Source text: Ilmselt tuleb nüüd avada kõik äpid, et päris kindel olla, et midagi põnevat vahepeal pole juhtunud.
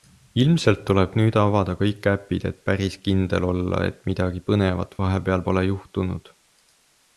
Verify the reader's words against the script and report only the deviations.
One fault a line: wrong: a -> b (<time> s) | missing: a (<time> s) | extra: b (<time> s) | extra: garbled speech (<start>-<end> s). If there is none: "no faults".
no faults